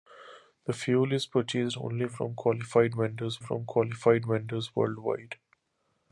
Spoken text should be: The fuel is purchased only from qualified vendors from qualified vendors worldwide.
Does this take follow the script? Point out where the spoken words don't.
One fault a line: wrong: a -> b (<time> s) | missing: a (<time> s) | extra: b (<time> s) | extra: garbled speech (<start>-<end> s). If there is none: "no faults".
no faults